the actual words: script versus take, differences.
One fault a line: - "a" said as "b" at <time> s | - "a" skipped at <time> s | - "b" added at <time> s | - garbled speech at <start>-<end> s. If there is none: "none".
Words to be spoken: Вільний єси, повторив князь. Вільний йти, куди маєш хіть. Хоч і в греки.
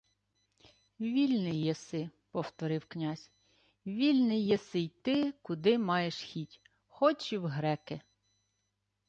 - "єси" added at 4.5 s